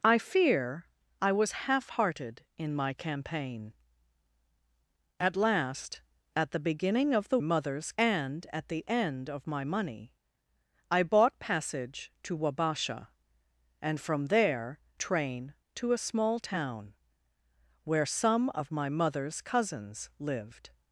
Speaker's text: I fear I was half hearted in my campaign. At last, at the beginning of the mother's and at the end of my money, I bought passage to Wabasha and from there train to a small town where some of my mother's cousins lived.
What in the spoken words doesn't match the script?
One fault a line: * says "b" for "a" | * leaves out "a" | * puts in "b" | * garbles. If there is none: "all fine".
all fine